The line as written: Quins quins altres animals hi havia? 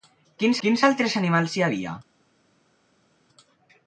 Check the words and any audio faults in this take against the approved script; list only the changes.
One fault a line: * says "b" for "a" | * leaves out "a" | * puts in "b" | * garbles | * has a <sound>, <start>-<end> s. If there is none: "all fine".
all fine